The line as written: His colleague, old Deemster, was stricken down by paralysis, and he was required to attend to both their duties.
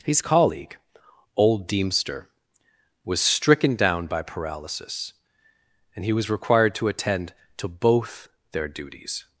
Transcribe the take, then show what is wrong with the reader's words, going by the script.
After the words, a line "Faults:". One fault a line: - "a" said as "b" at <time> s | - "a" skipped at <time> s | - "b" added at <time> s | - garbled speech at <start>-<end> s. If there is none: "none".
His colleague, old Deemster, was stricken down by paralysis, and he was required to attend to both their duties.
Faults:
none